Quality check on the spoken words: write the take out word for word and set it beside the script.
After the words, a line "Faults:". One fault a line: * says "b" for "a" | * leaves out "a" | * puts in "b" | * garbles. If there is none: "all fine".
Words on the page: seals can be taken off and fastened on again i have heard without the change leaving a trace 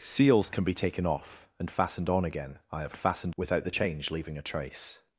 seals can be taken off and fastened on again i have fastened without the change leaving a trace
Faults:
* says "fastened" for "heard"